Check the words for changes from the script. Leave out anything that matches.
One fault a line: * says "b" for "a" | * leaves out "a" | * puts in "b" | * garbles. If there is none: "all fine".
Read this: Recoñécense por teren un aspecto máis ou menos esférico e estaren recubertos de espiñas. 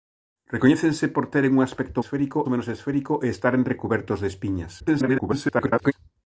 * says "esférico" for "máis"
* garbles